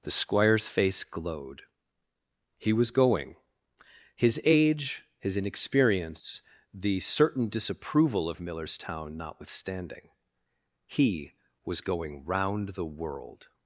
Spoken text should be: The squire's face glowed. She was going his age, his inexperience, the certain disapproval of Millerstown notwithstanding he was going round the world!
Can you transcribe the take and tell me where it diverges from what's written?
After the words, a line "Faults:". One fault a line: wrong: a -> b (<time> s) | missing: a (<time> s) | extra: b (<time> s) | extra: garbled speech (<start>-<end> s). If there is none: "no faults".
The squire's face glowed. He was going his age, his inexperience, the certain disapproval of Millerstown notwithstanding he was going round the world!
Faults:
wrong: She -> He (2.6 s)